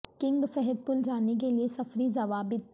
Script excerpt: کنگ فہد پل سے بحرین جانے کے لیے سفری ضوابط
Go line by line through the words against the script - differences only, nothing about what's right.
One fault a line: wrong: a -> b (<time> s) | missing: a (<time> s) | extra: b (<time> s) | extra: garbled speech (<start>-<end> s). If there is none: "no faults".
missing: سے بحرین (1.0 s)